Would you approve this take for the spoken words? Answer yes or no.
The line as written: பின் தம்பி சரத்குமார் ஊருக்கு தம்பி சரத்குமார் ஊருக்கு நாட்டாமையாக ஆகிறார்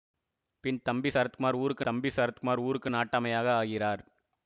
yes